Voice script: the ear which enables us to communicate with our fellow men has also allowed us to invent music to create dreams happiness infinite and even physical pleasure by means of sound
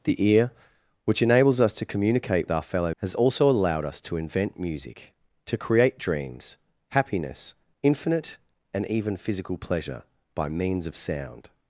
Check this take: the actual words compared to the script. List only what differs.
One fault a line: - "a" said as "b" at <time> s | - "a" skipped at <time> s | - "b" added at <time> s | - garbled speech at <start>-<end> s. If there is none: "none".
- "with" skipped at 2.5 s
- "men" skipped at 2.9 s